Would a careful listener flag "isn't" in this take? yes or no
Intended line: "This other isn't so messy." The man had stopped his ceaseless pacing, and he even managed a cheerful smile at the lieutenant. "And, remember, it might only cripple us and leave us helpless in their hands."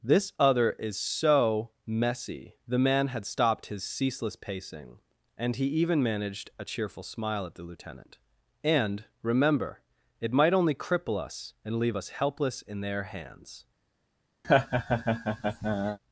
yes